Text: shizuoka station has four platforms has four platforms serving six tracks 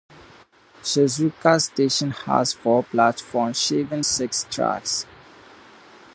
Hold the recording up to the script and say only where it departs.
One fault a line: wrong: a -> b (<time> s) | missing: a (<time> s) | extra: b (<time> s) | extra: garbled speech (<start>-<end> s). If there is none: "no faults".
missing: has four platforms (3.6 s)